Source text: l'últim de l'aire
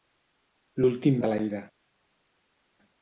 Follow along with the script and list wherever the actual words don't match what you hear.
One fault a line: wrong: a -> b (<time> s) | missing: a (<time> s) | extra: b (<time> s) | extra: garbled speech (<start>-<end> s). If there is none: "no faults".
no faults